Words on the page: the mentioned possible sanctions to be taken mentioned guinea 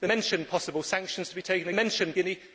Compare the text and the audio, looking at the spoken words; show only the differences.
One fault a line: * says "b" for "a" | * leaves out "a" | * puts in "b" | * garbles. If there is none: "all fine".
all fine